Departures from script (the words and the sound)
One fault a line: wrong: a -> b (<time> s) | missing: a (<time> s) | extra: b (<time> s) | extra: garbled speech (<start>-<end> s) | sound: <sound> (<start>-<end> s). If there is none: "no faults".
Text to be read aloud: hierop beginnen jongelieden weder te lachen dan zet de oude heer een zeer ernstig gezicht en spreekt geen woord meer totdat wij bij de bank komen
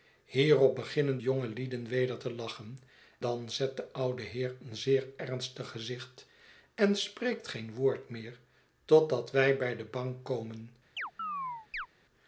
sound: chirp (11.0-11.9 s)